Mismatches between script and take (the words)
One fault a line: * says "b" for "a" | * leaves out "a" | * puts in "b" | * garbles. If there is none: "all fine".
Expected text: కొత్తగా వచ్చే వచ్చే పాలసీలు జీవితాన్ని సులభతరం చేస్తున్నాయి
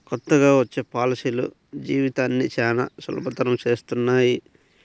* leaves out "వచ్చే"
* puts in "చానా"